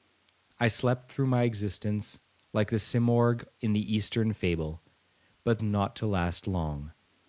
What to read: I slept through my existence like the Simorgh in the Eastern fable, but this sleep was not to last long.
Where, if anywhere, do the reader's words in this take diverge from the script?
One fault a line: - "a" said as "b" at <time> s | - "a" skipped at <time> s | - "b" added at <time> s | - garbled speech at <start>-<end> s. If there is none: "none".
- "this sleep was" skipped at 5.6 s